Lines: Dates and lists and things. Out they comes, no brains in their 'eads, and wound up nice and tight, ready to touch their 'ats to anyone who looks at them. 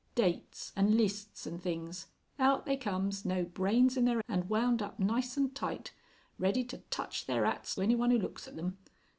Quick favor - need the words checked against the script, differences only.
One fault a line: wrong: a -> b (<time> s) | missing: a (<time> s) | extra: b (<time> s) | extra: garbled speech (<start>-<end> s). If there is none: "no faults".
missing: eads (4.2 s)
missing: to (7.7 s)